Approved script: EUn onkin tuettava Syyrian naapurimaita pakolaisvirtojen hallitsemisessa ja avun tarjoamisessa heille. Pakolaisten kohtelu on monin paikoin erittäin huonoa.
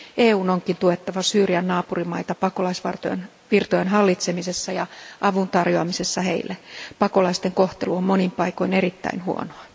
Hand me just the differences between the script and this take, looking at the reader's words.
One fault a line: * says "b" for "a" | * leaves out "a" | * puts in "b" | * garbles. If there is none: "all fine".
all fine